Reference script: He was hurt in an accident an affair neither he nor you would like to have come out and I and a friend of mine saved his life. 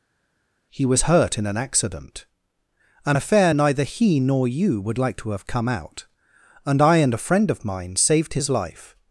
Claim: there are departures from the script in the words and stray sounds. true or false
false